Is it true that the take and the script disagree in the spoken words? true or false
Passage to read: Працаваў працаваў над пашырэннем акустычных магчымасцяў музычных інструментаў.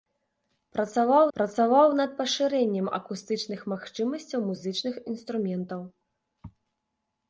false